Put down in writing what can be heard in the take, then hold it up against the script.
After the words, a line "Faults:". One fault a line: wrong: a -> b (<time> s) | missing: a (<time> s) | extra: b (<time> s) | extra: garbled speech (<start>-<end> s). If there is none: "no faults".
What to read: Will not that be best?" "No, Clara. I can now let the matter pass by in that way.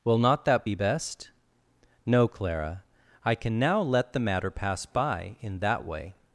Will not that be best?" "No, Clara. I can now let the matter pass by in that way.
Faults:
no faults